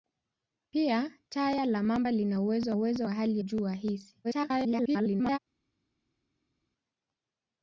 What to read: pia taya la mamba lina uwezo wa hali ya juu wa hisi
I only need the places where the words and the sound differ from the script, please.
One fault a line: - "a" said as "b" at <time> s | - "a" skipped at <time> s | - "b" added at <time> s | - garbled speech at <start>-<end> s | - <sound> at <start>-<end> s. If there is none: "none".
- "uwezo" added at 2.7 s
- "ya" skipped at 3.4 s
- garbled speech at 4.2-5.4 s